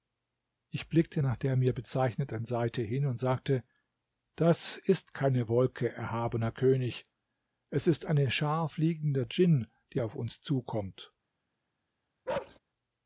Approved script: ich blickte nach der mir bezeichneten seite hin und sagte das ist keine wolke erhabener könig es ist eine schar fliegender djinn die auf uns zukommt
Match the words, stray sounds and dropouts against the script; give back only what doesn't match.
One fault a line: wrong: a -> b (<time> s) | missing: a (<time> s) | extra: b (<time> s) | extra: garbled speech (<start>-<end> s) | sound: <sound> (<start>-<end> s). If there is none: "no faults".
sound: bark (12.3-12.6 s)